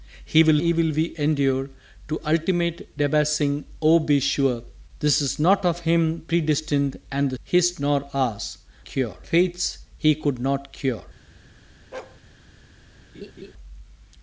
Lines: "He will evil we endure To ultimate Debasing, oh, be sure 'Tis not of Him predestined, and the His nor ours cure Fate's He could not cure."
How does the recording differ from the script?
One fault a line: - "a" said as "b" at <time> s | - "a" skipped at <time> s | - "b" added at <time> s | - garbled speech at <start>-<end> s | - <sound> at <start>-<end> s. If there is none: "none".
- bark at 11.9-12.2 s
- laugh at 13.1-13.5 s